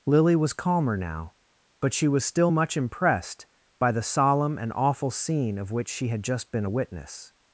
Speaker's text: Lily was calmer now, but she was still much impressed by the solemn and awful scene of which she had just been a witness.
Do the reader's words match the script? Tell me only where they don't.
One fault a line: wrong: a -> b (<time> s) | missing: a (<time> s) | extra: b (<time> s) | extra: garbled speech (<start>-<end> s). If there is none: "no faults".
no faults